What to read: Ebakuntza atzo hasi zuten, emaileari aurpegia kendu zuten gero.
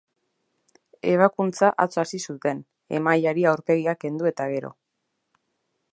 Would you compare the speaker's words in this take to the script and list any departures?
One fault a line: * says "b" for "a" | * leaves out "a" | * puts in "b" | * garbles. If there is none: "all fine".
* says "eta" for "zuten"